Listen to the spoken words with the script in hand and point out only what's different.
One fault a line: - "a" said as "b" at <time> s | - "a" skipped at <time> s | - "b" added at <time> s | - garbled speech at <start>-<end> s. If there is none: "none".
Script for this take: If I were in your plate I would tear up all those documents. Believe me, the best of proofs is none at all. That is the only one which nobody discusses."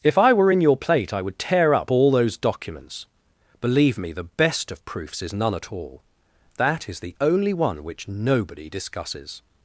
none